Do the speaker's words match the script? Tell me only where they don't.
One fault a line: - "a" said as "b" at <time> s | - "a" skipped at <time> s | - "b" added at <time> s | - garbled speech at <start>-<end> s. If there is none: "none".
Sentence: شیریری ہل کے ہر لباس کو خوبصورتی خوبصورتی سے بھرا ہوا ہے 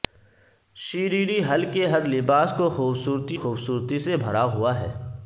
none